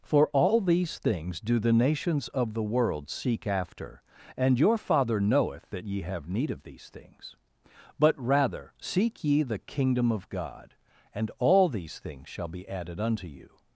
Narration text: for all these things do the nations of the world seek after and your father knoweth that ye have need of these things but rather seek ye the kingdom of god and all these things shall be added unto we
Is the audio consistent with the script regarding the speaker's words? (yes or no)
no